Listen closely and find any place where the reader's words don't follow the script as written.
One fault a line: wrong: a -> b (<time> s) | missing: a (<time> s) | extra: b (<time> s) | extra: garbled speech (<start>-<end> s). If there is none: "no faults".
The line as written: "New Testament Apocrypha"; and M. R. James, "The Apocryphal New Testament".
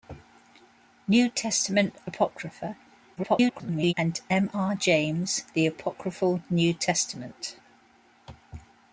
extra: garbled speech (3.2-3.9 s)